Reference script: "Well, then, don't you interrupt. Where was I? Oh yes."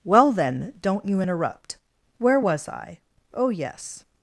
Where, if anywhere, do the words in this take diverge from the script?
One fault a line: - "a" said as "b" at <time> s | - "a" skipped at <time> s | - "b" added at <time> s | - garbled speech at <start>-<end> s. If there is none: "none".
none